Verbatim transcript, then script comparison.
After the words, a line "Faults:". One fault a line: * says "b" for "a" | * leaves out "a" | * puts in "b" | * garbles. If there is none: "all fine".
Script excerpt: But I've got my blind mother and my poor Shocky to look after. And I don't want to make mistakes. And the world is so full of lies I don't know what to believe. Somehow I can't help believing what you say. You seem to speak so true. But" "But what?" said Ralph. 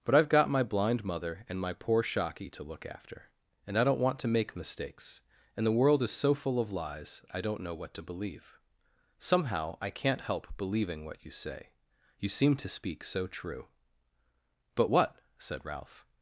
But I've got my blind mother and my poor Shocky to look after. And I don't want to make mistakes. And the world is so full of lies I don't know what to believe. Somehow I can't help believing what you say. You seem to speak so true. But" what?" said Ralph.
Faults:
* leaves out "But"